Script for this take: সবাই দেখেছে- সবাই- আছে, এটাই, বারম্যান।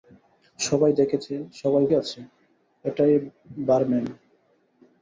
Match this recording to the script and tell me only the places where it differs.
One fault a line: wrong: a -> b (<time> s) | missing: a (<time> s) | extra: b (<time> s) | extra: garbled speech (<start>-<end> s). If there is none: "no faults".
no faults